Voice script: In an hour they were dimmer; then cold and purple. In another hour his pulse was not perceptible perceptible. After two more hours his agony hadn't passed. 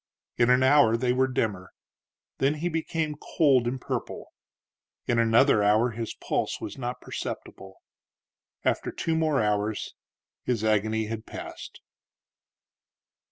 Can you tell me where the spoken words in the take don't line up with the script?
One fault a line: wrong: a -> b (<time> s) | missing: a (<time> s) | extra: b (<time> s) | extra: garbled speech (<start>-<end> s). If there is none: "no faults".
extra: he became (2.5 s)
missing: perceptible (7.8 s)
wrong: hadn't -> had (11.1 s)